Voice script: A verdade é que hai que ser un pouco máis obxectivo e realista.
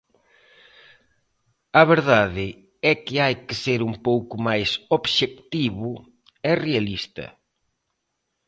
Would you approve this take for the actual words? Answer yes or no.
yes